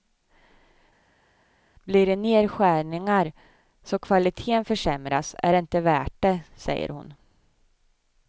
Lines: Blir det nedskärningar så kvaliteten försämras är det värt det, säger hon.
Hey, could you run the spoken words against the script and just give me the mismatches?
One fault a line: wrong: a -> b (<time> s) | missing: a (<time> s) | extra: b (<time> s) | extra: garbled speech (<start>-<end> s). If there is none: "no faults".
extra: inte (5.6 s)